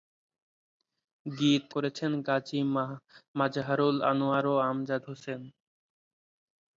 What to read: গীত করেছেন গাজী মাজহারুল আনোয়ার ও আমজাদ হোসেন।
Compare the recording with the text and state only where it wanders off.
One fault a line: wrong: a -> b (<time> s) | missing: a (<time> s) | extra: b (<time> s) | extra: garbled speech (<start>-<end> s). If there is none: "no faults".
no faults